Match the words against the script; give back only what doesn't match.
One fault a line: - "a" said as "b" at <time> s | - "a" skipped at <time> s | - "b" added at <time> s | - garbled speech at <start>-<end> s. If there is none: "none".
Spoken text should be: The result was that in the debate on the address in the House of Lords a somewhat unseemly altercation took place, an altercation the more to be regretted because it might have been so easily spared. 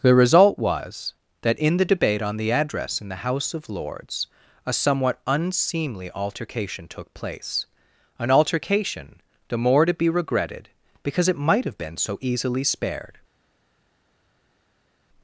none